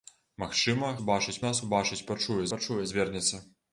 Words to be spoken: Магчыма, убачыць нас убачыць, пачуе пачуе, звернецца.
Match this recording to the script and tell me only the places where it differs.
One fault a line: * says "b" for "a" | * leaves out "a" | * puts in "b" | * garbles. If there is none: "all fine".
all fine